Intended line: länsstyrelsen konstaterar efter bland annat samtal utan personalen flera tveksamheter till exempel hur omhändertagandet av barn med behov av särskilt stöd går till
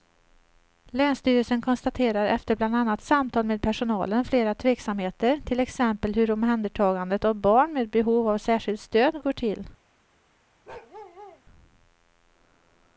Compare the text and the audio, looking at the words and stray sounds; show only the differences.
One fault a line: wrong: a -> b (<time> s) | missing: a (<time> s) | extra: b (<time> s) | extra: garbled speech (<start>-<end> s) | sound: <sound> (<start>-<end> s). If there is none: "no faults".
wrong: utan -> med (3.5 s)
sound: bark (10.7-11.4 s)